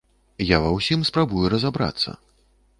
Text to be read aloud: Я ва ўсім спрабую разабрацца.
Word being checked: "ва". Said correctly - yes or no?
yes